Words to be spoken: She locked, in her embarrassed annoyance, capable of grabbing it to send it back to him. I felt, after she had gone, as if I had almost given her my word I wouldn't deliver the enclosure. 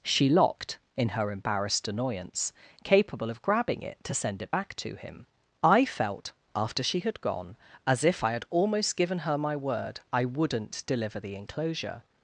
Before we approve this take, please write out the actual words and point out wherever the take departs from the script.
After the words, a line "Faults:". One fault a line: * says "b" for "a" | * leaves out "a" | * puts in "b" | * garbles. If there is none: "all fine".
She locked, in her embarrassed annoyance, capable of grabbing it to send it back to him. I felt, after she had gone, as if I had almost given her my word I wouldn't deliver the enclosure.
Faults:
all fine